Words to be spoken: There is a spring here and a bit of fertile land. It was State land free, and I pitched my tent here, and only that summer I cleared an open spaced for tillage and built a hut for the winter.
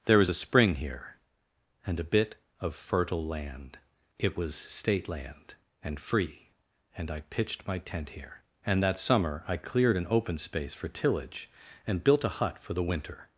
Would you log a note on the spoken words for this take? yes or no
yes